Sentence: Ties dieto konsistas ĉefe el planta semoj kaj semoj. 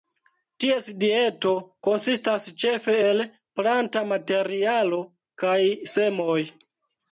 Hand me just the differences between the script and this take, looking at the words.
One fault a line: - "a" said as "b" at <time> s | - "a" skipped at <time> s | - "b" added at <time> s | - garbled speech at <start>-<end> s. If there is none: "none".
- "semoj" said as "materialo" at 4.1 s